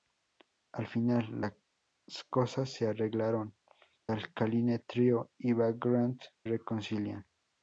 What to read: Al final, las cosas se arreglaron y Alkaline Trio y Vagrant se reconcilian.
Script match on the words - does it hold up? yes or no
no